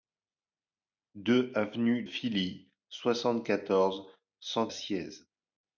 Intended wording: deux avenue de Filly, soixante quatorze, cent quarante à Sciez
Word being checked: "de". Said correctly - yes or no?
no